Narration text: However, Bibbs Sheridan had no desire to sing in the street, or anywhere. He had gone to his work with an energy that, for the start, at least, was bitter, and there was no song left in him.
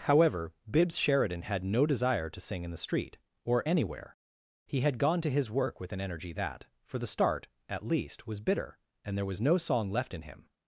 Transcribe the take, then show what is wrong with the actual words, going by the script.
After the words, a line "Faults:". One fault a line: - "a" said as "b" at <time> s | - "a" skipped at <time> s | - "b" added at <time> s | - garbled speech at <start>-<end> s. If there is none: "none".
However, Bibbs Sheridan had no desire to sing in the street, or anywhere. He had gone to his work with an energy that, for the start, at least, was bitter, and there was no song left in him.
Faults:
none